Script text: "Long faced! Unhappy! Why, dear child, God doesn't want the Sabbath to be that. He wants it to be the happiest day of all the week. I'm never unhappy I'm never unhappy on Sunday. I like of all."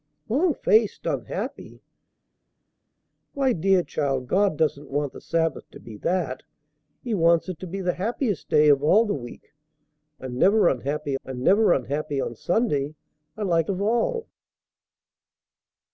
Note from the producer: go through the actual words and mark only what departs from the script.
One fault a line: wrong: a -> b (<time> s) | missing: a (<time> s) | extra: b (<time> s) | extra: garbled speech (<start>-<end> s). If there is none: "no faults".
no faults